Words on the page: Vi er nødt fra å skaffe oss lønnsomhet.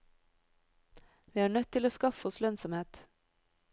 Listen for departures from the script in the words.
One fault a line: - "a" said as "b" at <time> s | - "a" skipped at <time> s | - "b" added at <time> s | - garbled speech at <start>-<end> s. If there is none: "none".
- "fra" said as "til" at 1.7 s